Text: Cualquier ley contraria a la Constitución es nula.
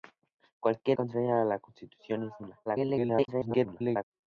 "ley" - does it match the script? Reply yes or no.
no